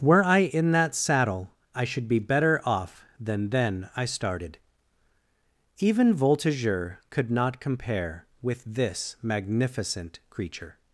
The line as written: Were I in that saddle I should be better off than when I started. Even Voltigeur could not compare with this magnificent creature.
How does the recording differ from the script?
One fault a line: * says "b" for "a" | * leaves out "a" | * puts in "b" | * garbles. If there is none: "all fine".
* says "then" for "when"